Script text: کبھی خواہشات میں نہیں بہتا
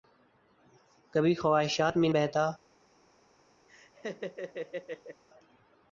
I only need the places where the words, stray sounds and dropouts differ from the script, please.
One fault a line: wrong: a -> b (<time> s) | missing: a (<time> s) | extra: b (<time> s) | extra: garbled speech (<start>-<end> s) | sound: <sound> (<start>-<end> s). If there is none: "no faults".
missing: نہیں (2.1 s)
sound: laugh (3.7-5.2 s)